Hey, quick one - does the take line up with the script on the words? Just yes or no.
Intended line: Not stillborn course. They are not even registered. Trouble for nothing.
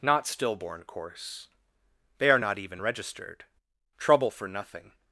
yes